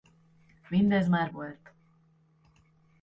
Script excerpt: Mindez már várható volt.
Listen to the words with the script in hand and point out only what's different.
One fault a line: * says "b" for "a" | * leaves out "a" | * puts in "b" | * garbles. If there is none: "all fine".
* leaves out "várható"